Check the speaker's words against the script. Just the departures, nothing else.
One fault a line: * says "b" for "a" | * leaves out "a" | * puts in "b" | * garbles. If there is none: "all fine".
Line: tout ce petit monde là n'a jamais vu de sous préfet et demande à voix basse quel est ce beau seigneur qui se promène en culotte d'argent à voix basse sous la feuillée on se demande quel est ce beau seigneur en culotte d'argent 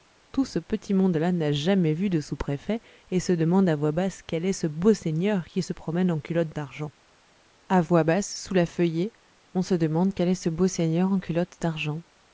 * puts in "se"